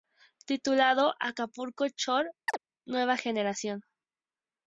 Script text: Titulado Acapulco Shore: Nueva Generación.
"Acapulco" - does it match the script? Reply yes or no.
yes